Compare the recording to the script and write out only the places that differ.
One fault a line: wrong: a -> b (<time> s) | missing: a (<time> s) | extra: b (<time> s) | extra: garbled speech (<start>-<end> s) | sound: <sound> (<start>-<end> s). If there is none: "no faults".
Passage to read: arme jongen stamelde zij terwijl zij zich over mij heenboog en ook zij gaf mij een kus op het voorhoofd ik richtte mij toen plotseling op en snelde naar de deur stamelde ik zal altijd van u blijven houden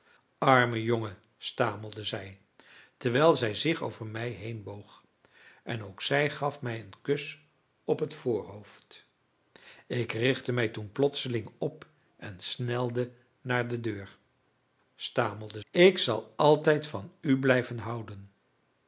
no faults